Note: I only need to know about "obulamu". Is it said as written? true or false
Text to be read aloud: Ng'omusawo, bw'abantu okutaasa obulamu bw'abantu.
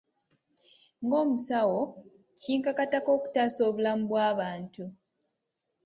true